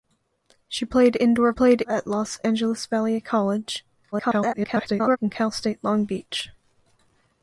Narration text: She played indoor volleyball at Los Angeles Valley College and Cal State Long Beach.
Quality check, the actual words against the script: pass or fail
fail